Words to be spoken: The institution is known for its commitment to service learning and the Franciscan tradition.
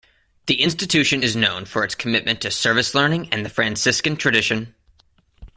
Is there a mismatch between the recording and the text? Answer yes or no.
no